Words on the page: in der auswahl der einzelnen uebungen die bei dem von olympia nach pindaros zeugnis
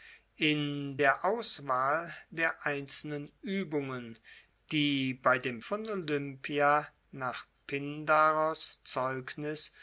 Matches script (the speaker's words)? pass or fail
pass